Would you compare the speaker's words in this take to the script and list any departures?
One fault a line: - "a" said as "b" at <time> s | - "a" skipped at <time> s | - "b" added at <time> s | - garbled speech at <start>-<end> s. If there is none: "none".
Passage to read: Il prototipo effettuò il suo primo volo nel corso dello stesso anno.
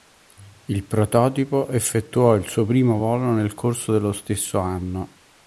none